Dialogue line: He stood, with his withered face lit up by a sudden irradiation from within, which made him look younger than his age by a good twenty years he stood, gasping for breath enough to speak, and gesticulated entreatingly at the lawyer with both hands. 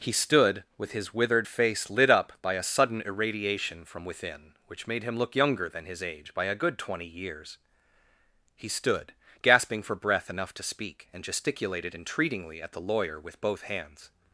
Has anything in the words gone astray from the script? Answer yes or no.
no